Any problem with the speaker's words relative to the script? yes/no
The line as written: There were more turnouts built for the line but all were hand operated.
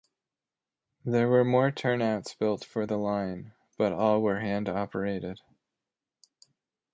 no